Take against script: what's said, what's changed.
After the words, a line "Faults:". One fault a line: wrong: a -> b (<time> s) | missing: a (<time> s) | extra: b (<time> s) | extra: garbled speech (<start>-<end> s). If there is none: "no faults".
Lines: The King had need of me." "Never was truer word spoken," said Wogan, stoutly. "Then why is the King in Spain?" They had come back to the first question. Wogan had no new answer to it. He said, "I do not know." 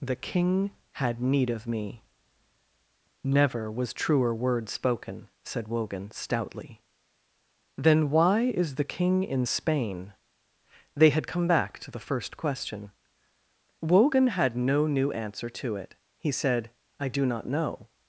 The King had need of me." "Never was truer word spoken," said Wogan, stoutly. "Then why is the King in Spain?" They had come back to the first question. Wogan had no new answer to it. He said, "I do not know."
Faults:
no faults